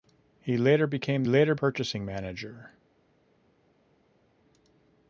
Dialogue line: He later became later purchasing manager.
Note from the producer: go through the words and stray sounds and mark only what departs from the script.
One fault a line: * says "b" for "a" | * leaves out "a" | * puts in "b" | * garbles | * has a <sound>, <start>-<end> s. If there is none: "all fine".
all fine